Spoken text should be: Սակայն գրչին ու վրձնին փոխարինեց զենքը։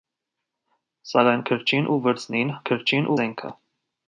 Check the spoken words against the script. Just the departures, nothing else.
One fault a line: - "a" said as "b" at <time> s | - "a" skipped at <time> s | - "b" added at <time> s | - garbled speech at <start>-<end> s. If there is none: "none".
- "փոխարինեց" said as "գրչին" at 2.7 s